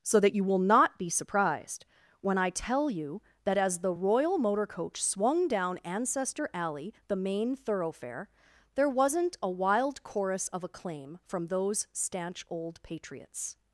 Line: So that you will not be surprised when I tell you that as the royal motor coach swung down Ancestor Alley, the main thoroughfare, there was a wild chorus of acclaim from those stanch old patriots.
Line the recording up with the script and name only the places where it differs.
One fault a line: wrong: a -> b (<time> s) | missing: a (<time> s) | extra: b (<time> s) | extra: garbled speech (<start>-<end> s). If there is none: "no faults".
wrong: was -> wasn't (8.9 s)